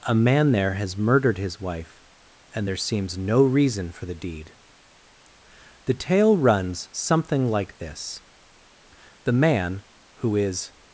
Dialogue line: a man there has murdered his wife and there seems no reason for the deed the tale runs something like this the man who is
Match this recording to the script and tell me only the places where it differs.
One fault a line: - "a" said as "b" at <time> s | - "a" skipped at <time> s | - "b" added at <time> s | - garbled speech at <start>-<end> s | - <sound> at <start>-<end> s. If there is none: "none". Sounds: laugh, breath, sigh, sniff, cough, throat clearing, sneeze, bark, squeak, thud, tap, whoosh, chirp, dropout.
none